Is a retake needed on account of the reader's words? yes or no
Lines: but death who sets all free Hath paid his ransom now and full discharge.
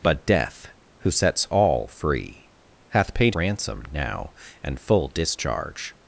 yes